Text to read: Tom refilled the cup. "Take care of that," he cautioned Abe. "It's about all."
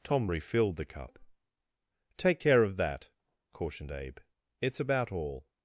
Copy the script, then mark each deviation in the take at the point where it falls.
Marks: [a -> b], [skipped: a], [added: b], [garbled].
Tom refilled the cup. "Take care of that," [skipped: he] cautioned Abe. "It's about all."